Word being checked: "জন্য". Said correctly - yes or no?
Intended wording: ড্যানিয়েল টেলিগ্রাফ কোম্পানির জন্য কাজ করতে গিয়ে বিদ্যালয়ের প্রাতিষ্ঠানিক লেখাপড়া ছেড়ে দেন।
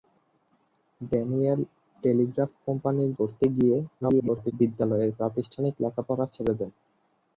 no